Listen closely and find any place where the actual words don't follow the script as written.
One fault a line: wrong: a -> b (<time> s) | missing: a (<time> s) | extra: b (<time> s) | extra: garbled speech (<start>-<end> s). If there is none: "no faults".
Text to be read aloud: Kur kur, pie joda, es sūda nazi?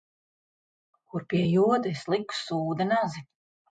missing: kur (1.3 s)
extra: liku (2.2 s)